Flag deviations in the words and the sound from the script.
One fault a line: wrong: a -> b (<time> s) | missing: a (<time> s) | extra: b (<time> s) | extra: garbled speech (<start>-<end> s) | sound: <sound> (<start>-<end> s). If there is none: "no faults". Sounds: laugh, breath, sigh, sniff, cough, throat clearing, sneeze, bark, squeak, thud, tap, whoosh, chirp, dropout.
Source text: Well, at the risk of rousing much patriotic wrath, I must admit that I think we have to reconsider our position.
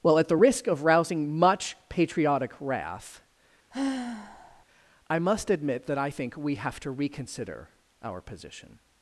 sound: sigh (3.7-4.6 s)